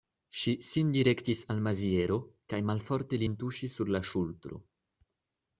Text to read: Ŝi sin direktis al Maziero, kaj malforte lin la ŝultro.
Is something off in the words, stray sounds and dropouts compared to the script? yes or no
yes